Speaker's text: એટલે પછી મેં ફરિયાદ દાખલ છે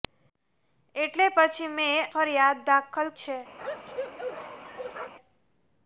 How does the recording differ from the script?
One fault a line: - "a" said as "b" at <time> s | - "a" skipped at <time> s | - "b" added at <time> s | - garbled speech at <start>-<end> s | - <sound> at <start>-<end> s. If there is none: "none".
- bark at 3.6-5.1 s